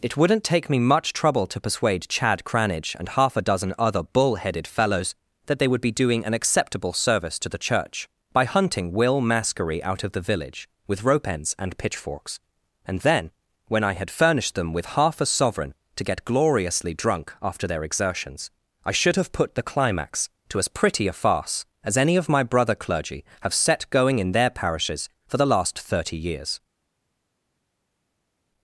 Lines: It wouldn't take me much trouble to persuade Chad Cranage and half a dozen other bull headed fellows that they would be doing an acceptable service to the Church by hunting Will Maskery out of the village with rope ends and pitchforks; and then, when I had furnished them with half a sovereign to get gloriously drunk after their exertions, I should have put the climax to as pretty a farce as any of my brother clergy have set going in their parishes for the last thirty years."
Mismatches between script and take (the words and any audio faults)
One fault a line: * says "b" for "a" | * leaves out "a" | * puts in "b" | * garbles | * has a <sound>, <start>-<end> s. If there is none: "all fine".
all fine